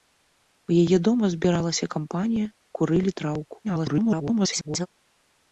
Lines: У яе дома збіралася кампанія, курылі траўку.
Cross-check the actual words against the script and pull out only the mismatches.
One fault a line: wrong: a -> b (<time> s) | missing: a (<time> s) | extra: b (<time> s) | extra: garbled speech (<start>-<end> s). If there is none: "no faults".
extra: garbled speech (3.6-4.9 s)